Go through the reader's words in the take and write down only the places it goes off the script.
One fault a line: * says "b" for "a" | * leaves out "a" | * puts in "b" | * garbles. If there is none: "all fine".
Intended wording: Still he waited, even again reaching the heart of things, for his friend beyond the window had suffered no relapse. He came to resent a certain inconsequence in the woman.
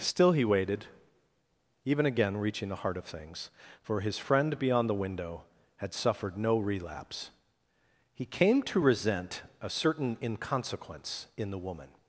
all fine